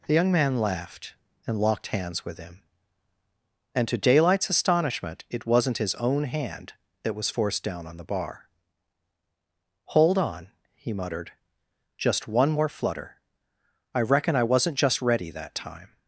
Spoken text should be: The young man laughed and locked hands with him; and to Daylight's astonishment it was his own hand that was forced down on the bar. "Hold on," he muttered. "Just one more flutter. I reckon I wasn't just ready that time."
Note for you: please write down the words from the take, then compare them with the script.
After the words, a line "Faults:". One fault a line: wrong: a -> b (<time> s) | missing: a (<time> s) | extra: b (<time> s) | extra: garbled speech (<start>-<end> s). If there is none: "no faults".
The young man laughed and locked hands with him; and to Daylight's astonishment it wasn't his own hand that was forced down on the bar. "Hold on," he muttered. "Just one more flutter. I reckon I wasn't just ready that time."
Faults:
wrong: was -> wasn't (5.5 s)